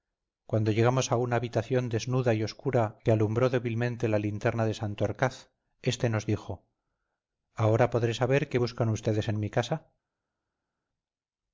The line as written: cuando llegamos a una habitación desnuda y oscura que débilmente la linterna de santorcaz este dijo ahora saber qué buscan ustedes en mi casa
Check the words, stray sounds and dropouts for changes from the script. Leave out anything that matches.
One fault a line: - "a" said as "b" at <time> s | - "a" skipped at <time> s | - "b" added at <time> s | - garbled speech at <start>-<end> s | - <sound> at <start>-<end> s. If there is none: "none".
- "alumbró" added at 3.1 s
- "nos" added at 6.1 s
- "podré" added at 7.9 s